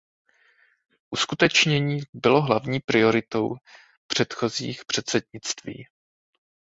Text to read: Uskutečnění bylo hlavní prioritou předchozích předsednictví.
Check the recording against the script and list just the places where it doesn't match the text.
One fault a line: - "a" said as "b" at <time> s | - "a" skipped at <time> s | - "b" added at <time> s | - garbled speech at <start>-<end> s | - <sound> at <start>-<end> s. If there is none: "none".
none